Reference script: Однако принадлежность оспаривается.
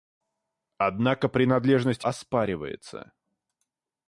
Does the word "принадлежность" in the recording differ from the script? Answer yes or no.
no